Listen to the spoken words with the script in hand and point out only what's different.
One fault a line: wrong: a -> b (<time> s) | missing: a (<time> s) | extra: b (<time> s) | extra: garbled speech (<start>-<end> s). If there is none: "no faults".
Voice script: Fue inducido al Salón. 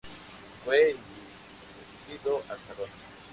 no faults